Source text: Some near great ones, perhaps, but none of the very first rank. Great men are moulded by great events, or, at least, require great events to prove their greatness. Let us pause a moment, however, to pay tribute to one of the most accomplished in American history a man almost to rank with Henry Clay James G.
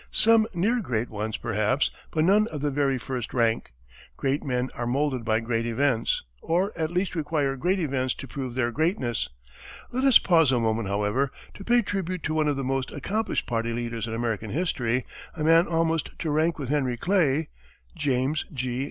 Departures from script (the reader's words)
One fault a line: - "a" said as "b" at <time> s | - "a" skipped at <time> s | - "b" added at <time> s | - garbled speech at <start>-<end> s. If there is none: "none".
- "party leaders" added at 13.4 s